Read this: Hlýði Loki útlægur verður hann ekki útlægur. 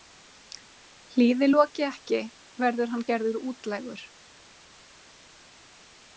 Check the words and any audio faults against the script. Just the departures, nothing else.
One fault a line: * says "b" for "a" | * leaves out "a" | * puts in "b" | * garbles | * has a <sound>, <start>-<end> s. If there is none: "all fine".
* says "ekki" for "útlægur"
* says "gerður" for "ekki"